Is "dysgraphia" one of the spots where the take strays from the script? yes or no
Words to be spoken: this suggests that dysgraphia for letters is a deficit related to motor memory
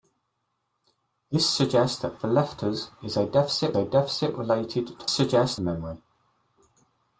yes